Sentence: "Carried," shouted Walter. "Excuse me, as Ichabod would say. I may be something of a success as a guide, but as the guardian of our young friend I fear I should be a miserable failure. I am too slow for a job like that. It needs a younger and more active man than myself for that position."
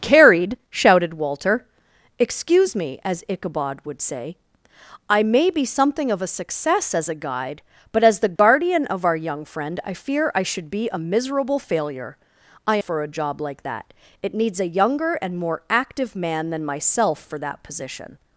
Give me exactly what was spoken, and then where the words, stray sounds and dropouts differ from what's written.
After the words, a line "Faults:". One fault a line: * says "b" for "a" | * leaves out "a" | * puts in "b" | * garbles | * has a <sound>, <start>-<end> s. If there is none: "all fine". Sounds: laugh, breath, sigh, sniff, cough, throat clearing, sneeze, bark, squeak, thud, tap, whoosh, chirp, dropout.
"Carried," shouted Walter. "Excuse me, as Ichabod would say. I may be something of a success as a guide, but as the guardian of our young friend I fear I should be a miserable failure. I for a job like that. It needs a younger and more active man than myself for that position."
Faults:
* has a dropout, 8.4-8.4 s
* leaves out "am too slow"